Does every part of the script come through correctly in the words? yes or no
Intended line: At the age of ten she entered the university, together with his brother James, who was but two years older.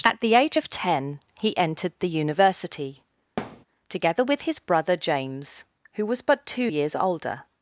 no